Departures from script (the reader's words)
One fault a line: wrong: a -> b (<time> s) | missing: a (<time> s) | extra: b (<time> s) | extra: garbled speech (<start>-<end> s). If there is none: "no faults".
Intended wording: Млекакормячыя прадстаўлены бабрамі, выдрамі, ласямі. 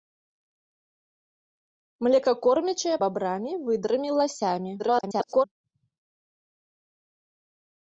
missing: прадстаўлены (3.0 s)
extra: garbled speech (4.8-5.5 s)